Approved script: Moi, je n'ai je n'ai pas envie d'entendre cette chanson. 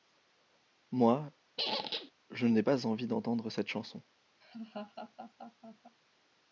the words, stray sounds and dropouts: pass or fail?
fail